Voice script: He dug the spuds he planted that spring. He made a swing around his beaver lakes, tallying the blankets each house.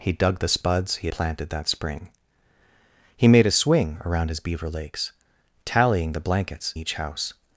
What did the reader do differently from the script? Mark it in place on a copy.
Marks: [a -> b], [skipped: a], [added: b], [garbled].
He dug the spuds he planted that spring. He made a swing around his beaver lakes, tallying the blankets each house.